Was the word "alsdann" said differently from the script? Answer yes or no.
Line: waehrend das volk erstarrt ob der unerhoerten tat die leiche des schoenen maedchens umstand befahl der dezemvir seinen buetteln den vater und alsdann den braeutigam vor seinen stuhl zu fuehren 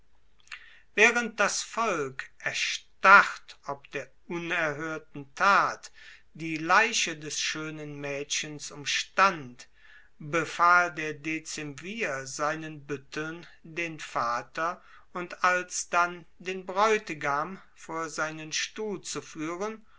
no